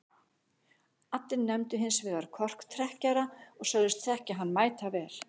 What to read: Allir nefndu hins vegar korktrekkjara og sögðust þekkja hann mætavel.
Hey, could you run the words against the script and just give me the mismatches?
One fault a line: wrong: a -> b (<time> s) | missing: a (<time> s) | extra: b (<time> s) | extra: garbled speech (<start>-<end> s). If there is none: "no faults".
no faults